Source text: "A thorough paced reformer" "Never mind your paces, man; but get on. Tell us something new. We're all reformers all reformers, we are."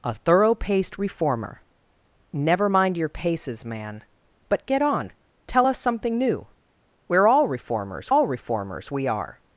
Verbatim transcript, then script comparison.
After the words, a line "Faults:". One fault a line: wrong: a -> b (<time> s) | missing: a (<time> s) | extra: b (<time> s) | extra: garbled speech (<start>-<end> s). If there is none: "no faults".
"A thorough paced reformer" "Never mind your paces, man; but get on. Tell us something new. We're all reformers all reformers, we are."
Faults:
no faults